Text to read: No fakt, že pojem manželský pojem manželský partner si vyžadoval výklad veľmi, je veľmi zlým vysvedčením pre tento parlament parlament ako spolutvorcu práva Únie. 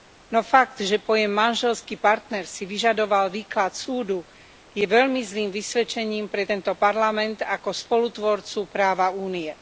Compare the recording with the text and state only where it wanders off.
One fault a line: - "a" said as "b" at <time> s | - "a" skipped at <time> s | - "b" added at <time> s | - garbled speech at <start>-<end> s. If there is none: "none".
- "pojem manželský" skipped at 2.0 s
- "veľmi" said as "súdu" at 3.8 s
- "parlament" skipped at 7.4 s